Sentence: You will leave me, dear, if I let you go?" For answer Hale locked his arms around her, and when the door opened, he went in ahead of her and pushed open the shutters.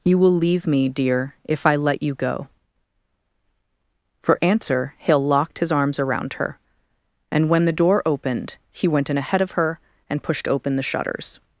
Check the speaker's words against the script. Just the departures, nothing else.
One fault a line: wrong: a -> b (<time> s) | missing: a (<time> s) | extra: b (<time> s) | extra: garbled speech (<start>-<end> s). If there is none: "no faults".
no faults